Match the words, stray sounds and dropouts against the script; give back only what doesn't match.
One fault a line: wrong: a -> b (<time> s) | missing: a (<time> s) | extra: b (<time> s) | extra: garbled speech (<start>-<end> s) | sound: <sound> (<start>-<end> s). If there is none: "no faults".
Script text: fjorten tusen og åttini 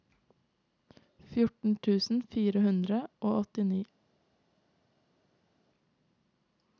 extra: fire hundre (2.3 s)